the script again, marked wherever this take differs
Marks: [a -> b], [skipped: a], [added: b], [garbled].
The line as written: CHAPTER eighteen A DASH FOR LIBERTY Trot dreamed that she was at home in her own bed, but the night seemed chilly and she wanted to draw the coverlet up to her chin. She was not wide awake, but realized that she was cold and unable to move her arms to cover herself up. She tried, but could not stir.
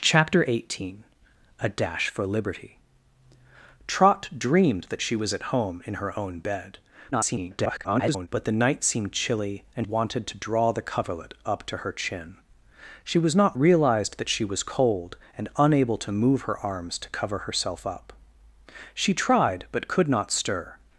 CHAPTER eighteen A DASH FOR LIBERTY Trot dreamed that she was at home in her own bed, [garbled] but the night seemed chilly and [skipped: she] wanted to draw the coverlet up to her chin. She was not [skipped: wide awake, but] realized that she was cold and unable to move her arms to cover herself up. She tried, but could not stir.